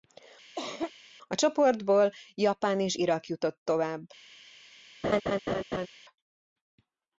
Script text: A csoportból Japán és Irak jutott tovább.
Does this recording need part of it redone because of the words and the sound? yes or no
yes